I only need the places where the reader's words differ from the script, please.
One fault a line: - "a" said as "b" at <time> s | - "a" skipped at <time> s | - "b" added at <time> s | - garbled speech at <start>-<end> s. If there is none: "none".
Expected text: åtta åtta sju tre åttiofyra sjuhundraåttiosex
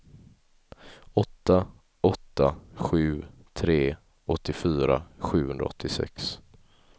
none